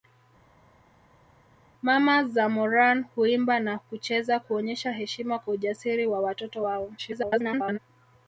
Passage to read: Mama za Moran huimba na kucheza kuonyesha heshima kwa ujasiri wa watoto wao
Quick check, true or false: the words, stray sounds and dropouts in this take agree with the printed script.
false